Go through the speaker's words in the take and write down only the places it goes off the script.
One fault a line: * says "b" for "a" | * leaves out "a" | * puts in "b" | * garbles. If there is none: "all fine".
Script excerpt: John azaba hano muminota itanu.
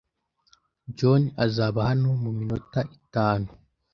all fine